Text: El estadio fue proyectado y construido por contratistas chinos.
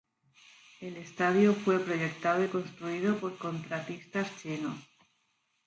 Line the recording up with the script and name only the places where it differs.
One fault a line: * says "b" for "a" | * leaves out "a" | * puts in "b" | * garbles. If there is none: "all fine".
all fine